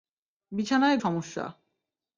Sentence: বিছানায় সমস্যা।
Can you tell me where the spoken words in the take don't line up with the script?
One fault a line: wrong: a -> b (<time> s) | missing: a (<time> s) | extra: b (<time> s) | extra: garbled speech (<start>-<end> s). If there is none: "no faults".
no faults